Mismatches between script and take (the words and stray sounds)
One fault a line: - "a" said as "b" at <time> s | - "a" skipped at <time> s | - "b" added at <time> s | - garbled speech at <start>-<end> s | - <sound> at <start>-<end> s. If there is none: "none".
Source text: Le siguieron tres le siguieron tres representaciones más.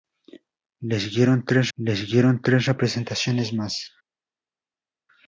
none